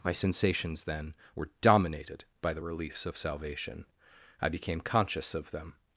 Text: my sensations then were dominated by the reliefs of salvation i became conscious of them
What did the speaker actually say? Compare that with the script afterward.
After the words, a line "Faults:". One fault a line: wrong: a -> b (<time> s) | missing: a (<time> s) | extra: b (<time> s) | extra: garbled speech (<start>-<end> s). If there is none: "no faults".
my sensations then were dominated by the reliefs of salvation i became conscious of them
Faults:
no faults